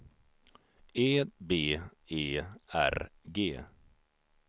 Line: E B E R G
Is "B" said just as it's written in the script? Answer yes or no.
yes